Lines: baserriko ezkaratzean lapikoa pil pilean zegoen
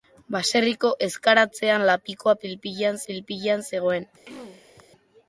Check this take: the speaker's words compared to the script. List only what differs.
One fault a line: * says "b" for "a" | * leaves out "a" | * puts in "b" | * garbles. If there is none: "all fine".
* puts in "pil pilean"